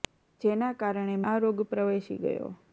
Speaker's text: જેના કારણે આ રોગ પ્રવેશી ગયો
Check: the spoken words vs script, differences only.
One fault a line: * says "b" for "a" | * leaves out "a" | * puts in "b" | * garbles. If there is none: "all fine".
all fine